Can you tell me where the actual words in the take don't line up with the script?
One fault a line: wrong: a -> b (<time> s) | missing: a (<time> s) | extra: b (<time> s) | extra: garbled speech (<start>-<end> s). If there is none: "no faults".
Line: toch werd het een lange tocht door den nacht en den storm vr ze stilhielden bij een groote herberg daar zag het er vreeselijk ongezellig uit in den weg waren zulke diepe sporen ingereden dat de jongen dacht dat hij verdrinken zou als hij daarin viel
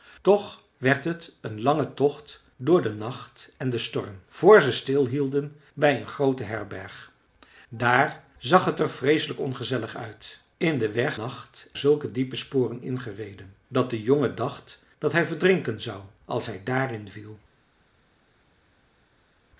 wrong: waren -> nacht (11.1 s)